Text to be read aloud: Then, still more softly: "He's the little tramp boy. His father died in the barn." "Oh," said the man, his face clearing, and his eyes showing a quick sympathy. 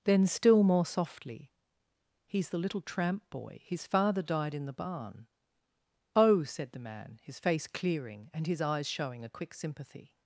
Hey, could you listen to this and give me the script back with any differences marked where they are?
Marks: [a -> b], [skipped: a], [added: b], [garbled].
Then, still more softly: "He's the little tramp boy. His father died in the barn." "Oh," said the man, his face clearing, and his eyes showing a quick sympathy.